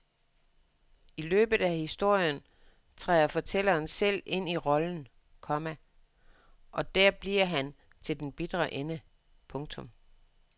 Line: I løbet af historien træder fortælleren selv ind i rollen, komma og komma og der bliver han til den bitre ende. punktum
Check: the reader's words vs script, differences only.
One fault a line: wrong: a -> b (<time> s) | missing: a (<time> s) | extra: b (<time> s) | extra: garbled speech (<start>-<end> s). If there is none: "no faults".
missing: komma og (7.0 s)